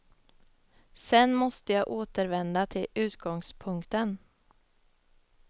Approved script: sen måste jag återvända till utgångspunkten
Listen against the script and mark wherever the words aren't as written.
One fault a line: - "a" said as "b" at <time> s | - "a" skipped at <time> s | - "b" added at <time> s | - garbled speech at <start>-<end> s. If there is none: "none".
none